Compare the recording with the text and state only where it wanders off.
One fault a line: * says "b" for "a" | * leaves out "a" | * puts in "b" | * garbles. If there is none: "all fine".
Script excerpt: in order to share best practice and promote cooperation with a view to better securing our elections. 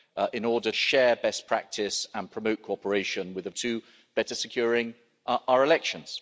* leaves out "to"
* leaves out "view"